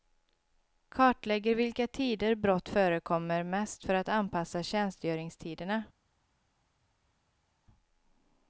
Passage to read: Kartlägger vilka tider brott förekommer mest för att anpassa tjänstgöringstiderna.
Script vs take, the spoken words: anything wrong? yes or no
no